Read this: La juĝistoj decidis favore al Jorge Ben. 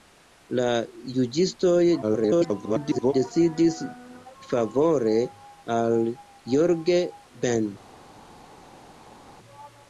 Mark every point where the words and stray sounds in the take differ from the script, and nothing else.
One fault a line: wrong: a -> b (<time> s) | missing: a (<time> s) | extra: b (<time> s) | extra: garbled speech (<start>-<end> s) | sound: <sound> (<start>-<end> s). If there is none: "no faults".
extra: garbled speech (2.0-3.1 s)